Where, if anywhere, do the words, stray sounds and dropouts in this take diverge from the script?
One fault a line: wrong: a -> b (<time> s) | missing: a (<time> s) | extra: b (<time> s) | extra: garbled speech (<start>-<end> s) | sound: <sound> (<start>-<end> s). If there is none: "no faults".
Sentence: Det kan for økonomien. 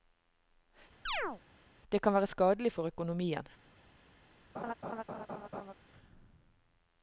sound: chirp (1.1-1.4 s)
extra: være skadelig (2.1 s)
sound: laugh (4.5-5.7 s)